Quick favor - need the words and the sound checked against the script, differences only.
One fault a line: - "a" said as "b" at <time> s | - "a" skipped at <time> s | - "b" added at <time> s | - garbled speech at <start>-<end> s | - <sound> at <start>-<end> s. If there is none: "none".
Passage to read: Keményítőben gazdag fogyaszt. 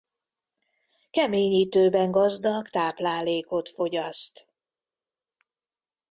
- "táplálékot" added at 2.7 s